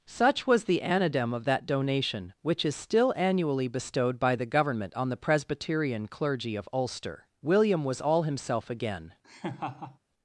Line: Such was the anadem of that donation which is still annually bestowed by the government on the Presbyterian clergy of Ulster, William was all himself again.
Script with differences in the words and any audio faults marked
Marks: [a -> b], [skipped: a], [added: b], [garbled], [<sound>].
Such was the anadem of that donation which is still annually bestowed by the government on the Presbyterian clergy of Ulster, William was all himself again. [laugh]